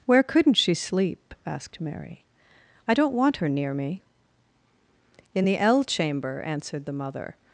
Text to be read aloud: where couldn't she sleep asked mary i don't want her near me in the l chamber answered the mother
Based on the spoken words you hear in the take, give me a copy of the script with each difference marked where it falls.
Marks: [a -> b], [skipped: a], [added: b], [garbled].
where couldn't she sleep asked mary i don't want her near me in the l chamber answered the mother